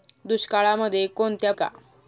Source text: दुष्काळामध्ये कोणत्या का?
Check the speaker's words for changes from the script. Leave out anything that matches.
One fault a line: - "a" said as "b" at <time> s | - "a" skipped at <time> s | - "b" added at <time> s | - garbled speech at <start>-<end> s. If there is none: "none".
none